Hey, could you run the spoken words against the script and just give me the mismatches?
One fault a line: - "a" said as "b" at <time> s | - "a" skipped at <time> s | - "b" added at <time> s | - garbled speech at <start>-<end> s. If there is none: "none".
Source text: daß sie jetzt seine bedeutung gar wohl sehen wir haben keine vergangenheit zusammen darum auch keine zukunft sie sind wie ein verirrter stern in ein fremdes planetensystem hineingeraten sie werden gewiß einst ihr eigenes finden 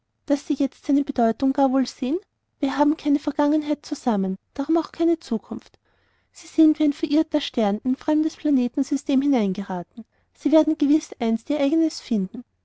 none